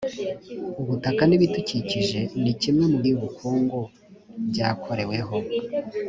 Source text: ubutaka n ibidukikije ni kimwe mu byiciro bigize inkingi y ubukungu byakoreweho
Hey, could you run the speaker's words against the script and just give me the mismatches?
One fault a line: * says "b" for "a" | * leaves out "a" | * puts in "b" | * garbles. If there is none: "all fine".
* leaves out "byiciro bigize inkingi"